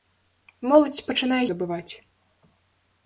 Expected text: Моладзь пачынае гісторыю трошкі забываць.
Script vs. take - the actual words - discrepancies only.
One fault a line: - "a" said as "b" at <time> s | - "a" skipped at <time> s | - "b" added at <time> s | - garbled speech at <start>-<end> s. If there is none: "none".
- "гісторыю трошкі" skipped at 1.4 s